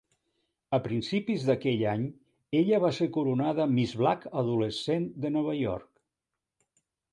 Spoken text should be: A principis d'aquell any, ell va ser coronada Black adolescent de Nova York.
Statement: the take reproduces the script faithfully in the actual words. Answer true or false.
false